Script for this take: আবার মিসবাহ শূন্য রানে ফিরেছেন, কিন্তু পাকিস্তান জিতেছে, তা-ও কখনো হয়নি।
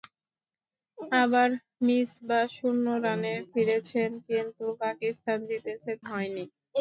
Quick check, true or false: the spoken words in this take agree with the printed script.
false